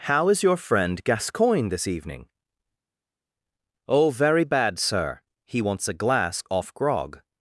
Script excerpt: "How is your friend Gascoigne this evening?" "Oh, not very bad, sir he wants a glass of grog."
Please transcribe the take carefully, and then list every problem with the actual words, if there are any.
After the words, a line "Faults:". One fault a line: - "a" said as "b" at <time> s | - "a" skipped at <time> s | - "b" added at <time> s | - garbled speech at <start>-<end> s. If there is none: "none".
"How is your friend Gascoigne this evening?" "Oh, very bad, sir he wants a glass off grog."
Faults:
- "not" skipped at 4.1 s
- "of" said as "off" at 6.5 s